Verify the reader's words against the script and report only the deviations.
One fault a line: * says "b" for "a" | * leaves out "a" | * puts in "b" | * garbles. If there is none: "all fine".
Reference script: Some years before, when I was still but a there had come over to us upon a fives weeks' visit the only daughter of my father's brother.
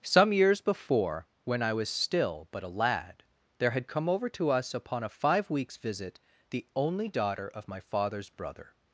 * puts in "lad"
* says "five" for "fives"